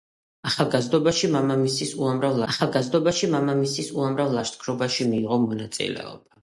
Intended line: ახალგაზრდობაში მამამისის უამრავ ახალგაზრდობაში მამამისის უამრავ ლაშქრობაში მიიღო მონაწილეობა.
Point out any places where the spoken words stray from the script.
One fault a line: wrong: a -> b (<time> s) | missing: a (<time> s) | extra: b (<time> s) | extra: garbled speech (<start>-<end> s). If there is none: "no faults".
no faults